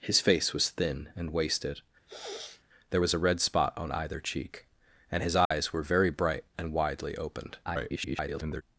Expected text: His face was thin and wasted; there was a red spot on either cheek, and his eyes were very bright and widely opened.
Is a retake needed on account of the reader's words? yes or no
yes